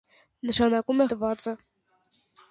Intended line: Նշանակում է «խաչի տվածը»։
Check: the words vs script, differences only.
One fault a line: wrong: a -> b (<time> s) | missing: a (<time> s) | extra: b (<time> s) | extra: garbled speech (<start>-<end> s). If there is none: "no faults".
missing: խաչի (1.1 s)